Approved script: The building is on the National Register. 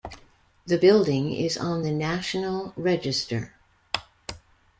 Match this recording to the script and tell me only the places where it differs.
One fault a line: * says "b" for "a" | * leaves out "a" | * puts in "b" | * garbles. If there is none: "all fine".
all fine